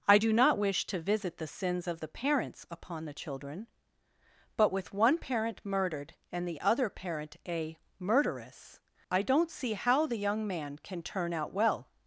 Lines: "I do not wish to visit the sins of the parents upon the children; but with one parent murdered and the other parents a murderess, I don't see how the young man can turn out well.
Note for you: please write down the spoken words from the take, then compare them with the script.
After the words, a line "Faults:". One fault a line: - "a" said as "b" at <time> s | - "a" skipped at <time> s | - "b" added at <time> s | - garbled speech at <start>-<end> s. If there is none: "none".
"I do not wish to visit the sins of the parents upon the children; but with one parent murdered and the other parent a murderess, I don't see how the young man can turn out well.
Faults:
- "parents" said as "parent" at 6.9 s